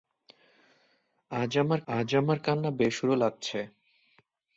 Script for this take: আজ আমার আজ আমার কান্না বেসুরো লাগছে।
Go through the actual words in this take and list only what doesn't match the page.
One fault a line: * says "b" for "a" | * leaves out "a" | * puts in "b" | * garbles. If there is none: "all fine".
all fine